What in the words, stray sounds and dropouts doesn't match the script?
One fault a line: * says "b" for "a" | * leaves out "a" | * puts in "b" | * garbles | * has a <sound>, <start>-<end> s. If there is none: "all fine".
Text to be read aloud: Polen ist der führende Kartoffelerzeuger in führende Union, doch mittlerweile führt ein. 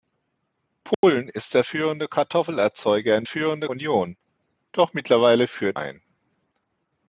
* has a dropout, 0.9-1.0 s